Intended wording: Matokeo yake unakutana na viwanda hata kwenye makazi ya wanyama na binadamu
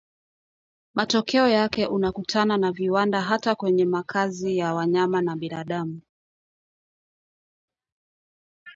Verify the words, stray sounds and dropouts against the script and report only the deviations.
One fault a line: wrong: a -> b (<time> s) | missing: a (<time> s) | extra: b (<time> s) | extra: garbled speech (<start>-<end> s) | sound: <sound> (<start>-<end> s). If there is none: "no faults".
no faults